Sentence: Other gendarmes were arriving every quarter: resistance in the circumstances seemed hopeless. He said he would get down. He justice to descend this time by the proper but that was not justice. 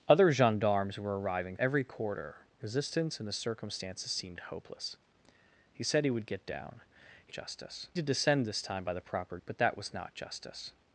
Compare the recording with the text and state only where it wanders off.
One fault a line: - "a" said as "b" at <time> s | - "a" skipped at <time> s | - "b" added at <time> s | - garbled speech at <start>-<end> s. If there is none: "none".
none